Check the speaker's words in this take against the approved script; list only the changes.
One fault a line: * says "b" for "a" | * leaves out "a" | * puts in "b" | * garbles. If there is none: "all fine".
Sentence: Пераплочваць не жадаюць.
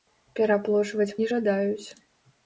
all fine